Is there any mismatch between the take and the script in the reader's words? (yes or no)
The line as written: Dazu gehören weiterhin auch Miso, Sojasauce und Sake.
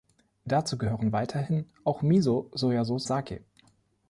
yes